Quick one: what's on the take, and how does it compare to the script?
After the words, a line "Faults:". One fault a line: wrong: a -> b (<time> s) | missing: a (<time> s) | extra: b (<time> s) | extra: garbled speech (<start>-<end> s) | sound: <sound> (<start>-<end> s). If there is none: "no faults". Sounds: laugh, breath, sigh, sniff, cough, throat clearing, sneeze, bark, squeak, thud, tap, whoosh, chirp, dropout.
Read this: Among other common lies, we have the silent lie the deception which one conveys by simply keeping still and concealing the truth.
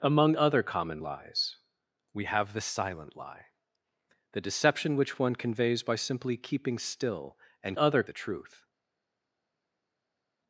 Among other common lies, we have the silent lie the deception which one conveys by simply keeping still and other the truth.
Faults:
wrong: concealing -> other (7.8 s)